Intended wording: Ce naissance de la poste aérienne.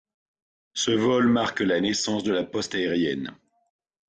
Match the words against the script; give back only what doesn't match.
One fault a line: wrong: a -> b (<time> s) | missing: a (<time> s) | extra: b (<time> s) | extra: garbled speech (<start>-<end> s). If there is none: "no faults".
extra: vol marque la (0.9 s)